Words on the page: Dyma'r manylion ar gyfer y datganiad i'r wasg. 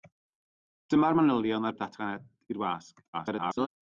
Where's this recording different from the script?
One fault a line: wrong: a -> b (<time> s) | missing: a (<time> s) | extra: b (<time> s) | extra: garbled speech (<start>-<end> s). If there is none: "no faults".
missing: gyfer (1.7 s)
extra: garbled speech (3.1-3.7 s)